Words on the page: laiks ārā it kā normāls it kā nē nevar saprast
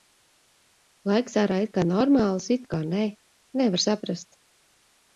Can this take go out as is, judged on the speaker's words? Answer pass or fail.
pass